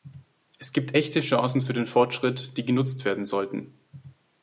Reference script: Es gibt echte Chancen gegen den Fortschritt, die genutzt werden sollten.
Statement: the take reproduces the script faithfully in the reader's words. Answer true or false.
false